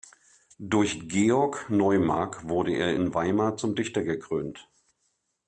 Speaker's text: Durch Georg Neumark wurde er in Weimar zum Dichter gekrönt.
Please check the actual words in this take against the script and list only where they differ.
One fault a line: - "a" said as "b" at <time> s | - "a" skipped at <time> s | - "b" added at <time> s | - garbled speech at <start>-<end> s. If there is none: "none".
none